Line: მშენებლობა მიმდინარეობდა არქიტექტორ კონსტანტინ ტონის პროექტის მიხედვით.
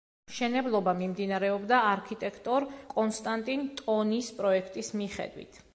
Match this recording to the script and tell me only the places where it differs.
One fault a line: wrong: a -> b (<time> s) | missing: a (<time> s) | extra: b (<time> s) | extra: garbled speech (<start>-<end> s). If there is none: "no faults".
no faults